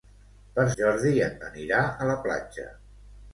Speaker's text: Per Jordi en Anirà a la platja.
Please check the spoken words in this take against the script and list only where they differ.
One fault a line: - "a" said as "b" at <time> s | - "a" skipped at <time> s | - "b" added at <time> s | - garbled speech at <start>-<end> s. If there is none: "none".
none